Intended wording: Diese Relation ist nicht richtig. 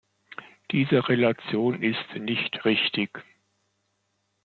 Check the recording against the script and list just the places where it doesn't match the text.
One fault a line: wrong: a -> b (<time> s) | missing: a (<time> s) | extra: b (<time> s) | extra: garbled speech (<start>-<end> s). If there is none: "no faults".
no faults